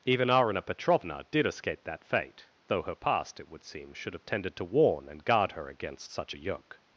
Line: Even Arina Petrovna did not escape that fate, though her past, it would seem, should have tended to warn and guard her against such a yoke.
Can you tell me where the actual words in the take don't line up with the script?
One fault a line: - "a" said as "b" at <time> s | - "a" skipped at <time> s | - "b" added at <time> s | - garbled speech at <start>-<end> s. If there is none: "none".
- "not" skipped at 1.4 s